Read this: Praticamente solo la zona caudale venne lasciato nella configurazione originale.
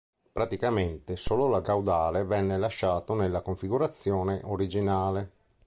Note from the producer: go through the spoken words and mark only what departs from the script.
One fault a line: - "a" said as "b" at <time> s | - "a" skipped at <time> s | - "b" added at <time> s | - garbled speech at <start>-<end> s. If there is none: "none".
- "zona" skipped at 1.6 s